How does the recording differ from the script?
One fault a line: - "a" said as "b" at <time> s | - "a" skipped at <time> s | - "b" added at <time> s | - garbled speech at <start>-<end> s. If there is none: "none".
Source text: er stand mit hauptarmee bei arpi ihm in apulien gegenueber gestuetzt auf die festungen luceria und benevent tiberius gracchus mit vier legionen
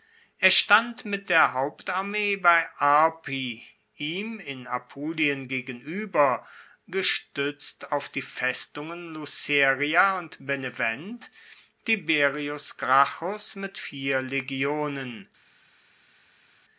- "der" added at 1.3 s